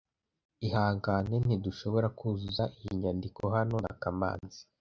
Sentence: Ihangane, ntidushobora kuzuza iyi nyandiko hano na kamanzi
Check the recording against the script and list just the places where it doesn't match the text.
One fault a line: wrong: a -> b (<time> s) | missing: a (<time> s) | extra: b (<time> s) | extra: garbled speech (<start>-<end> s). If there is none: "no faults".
no faults